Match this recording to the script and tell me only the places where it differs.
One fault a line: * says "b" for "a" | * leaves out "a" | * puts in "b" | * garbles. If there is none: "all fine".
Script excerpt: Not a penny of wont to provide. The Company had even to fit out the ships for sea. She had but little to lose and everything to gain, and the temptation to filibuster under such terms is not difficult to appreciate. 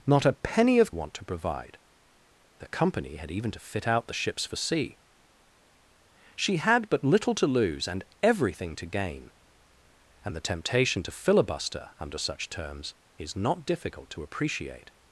all fine